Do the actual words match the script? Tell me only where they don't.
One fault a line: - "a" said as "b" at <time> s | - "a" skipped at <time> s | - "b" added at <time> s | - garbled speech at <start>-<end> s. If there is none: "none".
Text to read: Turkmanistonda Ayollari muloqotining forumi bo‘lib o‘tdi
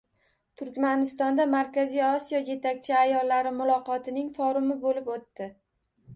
- "Markaziy Osiyo yetakchi" added at 1.5 s